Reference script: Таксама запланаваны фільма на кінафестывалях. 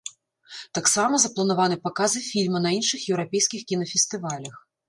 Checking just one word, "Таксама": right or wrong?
right